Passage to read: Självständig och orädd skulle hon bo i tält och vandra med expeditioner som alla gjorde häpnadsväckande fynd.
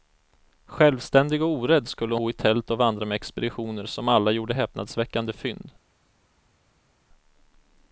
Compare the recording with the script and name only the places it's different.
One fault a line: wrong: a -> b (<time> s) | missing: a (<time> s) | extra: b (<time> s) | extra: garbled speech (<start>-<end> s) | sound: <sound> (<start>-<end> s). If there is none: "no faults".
missing: hon (2.1 s)